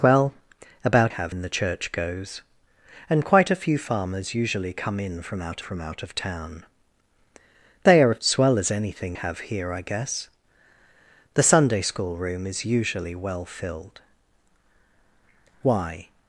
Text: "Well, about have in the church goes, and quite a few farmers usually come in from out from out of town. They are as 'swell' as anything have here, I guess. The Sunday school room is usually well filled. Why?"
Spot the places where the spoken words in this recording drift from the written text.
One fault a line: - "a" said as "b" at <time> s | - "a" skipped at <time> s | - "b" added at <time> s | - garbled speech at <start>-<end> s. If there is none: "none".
none